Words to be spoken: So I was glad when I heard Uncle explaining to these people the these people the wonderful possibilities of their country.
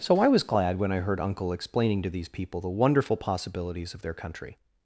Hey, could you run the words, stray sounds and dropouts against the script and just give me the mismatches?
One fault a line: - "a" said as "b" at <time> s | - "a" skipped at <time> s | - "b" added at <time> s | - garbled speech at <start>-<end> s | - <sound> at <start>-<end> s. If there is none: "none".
- "these people the" skipped at 2.7 s